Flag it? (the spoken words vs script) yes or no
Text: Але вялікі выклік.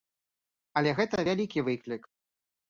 yes